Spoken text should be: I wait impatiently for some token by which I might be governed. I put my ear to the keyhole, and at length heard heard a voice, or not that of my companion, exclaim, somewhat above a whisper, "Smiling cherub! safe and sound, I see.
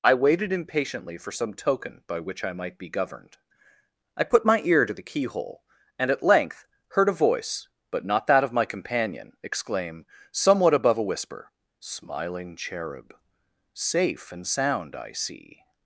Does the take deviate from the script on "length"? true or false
false